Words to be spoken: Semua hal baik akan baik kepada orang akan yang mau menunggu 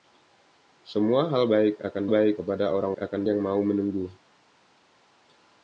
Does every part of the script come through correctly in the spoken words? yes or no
yes